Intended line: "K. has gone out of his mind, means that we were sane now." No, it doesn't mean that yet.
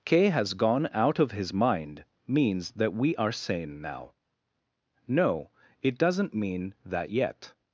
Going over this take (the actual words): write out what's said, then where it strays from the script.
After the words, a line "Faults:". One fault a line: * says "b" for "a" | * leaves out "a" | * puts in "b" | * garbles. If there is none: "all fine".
"K. has gone out of his mind, means that we are sane now." No, it doesn't mean that yet.
Faults:
* says "are" for "were"